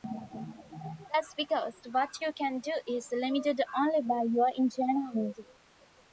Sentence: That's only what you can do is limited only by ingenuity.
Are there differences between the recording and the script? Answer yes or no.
yes